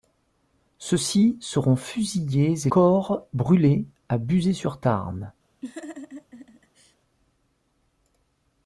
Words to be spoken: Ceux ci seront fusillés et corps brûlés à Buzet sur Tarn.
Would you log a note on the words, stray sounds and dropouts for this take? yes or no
yes